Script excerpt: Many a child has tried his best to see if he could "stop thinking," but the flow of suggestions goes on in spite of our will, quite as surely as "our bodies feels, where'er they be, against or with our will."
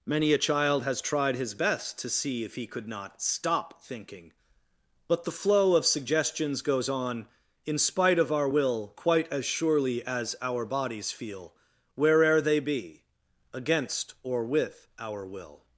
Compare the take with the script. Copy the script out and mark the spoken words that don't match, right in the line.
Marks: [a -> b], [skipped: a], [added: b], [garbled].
Many a child has tried his best to see if he could [added: not] "stop thinking," but the flow of suggestions goes on in spite of our will, quite as surely as "our bodies [feels, -> feel] where'er they be, against or with our will."